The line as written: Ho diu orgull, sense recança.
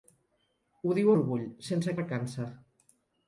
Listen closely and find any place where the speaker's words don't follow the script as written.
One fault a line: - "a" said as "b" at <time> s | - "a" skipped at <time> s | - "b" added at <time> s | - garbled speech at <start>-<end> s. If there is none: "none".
none